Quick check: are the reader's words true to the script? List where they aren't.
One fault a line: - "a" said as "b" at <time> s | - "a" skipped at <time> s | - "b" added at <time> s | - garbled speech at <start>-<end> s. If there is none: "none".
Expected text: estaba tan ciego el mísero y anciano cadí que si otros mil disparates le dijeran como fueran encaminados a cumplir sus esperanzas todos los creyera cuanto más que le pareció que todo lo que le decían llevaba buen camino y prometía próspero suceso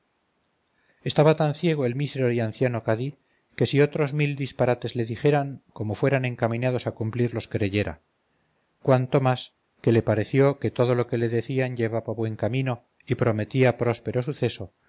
- "sus esperanzas todos" skipped at 7.3 s